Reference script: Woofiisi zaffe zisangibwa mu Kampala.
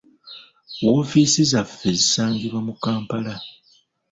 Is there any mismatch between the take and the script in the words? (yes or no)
no